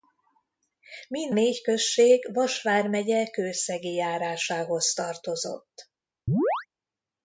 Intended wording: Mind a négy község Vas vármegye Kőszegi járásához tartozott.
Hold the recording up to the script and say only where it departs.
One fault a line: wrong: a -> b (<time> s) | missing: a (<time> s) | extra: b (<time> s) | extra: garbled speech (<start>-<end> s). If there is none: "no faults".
missing: a (1.4 s)